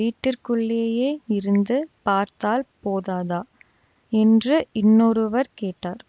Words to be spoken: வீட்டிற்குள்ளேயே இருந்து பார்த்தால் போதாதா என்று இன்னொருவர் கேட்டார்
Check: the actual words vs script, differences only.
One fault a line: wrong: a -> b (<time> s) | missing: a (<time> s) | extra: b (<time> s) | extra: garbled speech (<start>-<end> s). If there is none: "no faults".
no faults